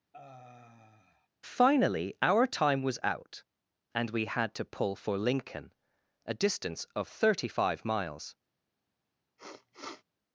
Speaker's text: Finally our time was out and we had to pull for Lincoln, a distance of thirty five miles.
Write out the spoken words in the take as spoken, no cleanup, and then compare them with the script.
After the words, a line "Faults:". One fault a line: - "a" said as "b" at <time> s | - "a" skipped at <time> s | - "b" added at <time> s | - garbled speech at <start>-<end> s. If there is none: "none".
Finally our time was out and we had to pull for Lincoln, a distance of thirty five miles.
Faults:
none